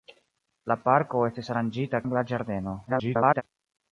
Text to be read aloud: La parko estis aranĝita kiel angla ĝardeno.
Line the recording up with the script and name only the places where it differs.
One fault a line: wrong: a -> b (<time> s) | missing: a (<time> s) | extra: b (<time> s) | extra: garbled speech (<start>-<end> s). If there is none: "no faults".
missing: kiel (2.0 s)
extra: garbled speech (2.9-3.4 s)